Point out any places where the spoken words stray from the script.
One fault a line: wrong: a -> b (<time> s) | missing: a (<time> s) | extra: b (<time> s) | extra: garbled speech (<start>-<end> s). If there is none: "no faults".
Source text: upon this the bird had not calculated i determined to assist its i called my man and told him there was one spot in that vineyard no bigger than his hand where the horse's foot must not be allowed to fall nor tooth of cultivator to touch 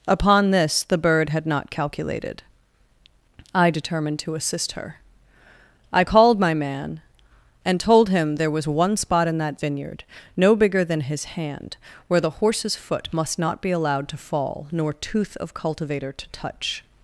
wrong: its -> her (4.7 s)